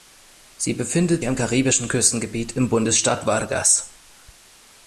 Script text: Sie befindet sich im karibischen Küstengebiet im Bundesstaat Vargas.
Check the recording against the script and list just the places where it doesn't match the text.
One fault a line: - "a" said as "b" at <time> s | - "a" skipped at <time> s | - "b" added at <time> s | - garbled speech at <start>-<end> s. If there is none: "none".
- "sich" skipped at 1.2 s